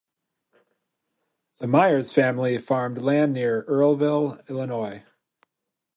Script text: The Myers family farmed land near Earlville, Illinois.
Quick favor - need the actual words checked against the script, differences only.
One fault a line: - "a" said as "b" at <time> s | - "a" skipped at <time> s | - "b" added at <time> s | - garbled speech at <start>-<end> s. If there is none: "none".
none